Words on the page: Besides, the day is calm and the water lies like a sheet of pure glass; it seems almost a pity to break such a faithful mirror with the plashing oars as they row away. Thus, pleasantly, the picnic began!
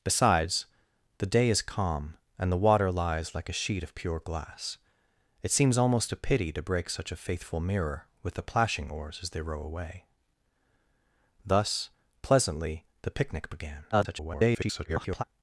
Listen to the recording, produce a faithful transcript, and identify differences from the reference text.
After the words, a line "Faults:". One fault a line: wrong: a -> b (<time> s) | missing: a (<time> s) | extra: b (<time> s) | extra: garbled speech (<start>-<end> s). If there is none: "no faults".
Besides, the day is calm and the water lies like a sheet of pure glass; it seems almost a pity to break such a faithful mirror with the plashing oars as they row away. Thus, pleasantly, the picnic began! [garbled]
Faults:
extra: garbled speech (13.9-15.2 s)